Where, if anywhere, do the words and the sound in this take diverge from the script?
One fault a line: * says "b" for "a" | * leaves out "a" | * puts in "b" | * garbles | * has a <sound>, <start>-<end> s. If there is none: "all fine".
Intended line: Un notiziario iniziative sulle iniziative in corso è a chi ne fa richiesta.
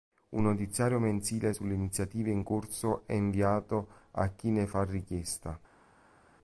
* says "mensile" for "iniziative"
* puts in "inviato"